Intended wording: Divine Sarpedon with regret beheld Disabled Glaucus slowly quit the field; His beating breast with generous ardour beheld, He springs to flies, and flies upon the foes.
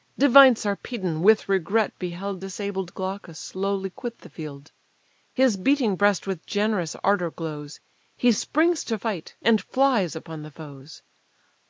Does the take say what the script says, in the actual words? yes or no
no